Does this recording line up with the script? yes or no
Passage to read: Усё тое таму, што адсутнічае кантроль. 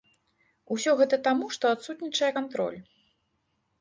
no